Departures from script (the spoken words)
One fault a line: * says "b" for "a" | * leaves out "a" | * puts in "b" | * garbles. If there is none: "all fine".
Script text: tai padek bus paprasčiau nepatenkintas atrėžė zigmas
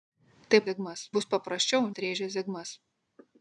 * says "zigmas" for "padek"
* leaves out "nepatenkintas"